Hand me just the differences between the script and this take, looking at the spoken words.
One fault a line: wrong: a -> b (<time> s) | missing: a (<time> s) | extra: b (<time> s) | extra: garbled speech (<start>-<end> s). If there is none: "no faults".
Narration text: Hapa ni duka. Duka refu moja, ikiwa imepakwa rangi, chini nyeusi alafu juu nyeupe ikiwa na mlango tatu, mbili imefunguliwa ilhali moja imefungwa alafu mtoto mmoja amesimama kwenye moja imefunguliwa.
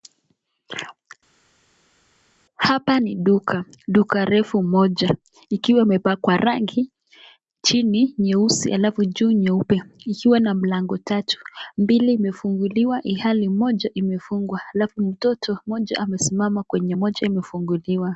no faults